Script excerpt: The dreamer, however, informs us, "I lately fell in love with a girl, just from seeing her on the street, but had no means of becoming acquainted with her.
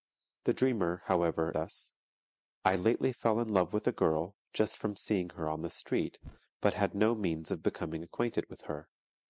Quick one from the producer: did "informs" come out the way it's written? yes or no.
no